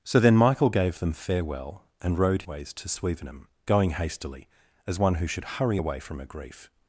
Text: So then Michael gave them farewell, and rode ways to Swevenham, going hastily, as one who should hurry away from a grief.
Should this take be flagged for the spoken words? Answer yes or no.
no